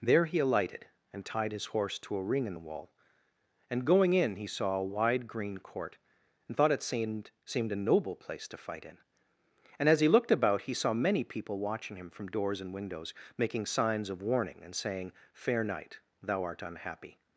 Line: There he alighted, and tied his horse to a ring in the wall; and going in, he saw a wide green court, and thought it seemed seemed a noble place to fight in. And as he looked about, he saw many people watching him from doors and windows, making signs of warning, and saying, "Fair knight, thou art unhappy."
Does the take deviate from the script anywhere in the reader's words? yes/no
no